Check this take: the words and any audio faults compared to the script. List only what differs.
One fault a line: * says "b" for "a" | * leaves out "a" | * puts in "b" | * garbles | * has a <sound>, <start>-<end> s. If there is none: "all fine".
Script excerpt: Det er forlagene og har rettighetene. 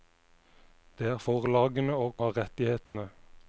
* has a dropout, 2.9-3.0 s